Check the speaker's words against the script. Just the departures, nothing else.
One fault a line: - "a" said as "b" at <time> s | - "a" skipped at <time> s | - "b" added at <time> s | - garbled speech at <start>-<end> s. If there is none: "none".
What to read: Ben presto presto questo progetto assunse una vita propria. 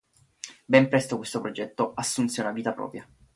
- "presto" skipped at 1.2 s